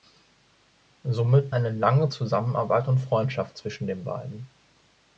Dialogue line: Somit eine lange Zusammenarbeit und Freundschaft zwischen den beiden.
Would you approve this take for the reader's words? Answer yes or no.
yes